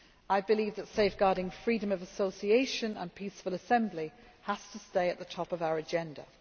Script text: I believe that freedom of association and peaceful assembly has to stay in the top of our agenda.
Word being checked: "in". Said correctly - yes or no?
no